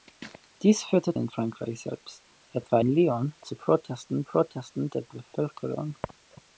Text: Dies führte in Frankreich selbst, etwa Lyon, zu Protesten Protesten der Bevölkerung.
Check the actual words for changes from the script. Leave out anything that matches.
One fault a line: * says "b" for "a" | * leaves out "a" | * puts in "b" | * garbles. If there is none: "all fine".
all fine